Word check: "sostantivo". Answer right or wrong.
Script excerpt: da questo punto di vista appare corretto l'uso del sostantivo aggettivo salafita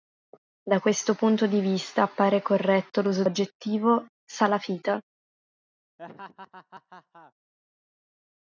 wrong